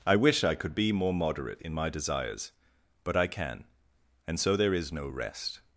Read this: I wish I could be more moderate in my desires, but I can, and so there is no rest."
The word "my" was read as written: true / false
true